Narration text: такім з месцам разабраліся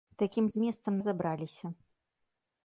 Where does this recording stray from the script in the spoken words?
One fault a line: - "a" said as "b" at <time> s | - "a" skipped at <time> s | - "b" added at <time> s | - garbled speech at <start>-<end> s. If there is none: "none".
none